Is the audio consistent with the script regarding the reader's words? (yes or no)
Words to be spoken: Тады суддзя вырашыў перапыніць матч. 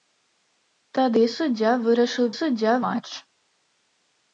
no